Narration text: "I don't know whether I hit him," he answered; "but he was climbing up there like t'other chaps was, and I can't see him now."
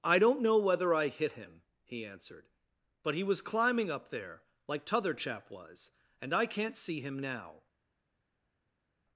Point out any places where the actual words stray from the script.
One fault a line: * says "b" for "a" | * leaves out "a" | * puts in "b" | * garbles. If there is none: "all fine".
* says "chap" for "chaps"